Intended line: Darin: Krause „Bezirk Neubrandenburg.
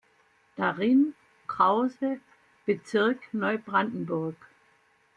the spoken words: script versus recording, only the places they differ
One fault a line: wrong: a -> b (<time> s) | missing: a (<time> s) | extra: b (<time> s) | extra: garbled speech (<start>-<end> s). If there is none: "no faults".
no faults